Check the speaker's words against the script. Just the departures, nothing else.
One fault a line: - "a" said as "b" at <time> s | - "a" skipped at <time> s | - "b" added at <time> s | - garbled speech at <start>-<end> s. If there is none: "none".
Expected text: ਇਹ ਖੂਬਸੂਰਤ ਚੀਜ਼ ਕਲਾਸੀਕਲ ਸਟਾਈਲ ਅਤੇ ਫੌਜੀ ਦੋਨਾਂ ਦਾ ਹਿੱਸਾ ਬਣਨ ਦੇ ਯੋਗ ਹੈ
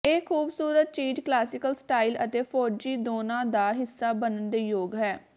none